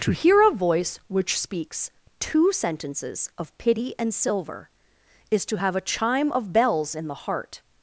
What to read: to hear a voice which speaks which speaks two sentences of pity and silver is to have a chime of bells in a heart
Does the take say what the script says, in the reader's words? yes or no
no